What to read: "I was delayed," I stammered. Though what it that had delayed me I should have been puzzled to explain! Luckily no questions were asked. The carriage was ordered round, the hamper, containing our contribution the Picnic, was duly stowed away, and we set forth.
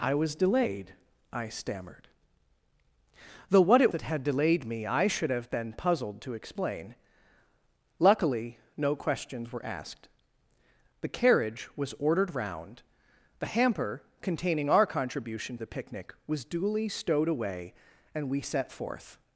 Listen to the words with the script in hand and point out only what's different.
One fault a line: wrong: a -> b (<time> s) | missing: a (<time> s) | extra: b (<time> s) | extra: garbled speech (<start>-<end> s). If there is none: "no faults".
no faults